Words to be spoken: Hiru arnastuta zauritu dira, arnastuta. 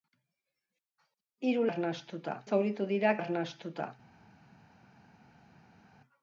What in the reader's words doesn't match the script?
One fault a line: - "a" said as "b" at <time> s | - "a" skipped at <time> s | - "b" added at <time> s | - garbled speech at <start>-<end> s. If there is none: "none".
none